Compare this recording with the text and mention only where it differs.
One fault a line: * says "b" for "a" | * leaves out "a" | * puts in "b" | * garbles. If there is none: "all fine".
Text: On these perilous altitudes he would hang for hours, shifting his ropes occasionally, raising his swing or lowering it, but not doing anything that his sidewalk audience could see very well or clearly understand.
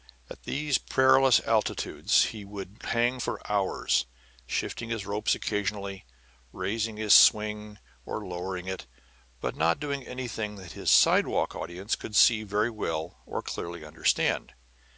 * says "At" for "On"